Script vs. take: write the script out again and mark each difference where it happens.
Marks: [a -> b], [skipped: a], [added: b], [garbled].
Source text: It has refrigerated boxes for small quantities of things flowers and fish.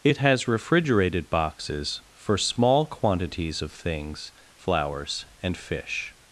It has refrigerated boxes for small quantities of things flowers and fish.